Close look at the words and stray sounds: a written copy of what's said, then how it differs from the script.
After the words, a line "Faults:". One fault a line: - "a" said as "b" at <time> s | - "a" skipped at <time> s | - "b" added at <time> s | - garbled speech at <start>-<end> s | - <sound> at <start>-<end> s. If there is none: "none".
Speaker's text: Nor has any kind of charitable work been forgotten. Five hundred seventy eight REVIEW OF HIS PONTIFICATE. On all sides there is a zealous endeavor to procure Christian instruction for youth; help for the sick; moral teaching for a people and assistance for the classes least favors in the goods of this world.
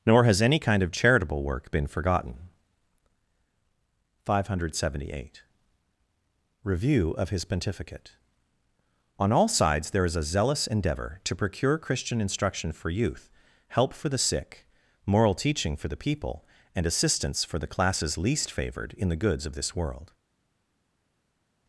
Nor has any kind of charitable work been forgotten. Five hundred seventy eight REVIEW OF HIS PONTIFICATE. On all sides there is a zealous endeavor to procure Christian instruction for youth; help for the sick; moral teaching for the people and assistance for the classes least favored in the goods of this world.
Faults:
- "a" said as "the" at 15.9 s
- "favors" said as "favored" at 18.5 s